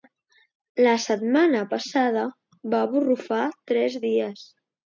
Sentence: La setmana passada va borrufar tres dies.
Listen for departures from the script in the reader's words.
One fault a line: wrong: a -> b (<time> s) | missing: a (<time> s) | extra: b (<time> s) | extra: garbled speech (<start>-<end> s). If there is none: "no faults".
no faults